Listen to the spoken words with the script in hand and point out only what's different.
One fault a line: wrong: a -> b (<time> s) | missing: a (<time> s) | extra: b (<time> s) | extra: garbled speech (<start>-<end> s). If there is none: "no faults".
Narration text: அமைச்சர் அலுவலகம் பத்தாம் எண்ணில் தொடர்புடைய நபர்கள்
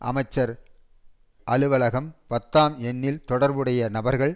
no faults